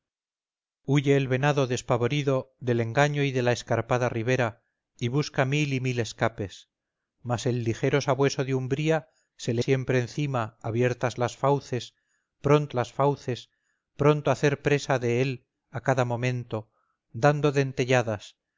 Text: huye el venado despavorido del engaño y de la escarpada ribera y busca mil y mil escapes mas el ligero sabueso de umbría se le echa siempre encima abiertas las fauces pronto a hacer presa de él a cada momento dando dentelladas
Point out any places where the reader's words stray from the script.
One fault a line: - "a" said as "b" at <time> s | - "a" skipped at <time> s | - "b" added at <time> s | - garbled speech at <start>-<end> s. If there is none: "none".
- "echa" skipped at 9.6 s
- "las fauces pronto" added at 12.7 s